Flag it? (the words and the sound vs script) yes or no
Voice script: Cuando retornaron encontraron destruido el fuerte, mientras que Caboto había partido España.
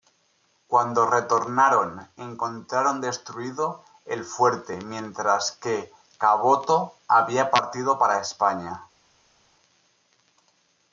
yes